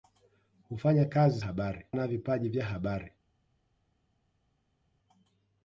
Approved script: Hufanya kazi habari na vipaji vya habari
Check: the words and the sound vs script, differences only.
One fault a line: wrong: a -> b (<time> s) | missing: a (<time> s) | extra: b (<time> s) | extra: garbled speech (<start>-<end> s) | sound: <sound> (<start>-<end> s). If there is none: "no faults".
no faults